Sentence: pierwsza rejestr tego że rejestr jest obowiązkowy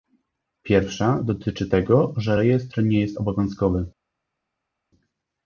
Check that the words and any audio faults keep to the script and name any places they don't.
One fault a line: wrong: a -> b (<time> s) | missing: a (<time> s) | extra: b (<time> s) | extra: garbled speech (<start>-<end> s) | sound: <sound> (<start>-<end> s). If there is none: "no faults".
wrong: rejestr -> dotyczy (1.2 s)
extra: nie (2.8 s)